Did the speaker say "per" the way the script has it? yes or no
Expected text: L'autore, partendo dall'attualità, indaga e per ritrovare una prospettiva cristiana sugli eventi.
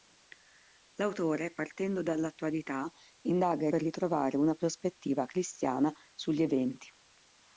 yes